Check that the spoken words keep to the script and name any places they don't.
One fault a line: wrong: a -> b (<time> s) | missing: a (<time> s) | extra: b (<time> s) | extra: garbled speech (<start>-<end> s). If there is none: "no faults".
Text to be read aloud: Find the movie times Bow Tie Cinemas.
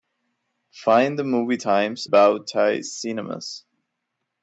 no faults